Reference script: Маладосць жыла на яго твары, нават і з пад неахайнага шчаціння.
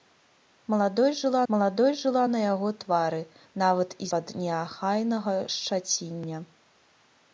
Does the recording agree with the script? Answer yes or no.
no